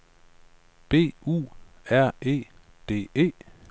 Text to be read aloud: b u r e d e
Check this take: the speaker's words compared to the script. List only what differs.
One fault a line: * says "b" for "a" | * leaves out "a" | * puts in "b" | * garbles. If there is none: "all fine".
all fine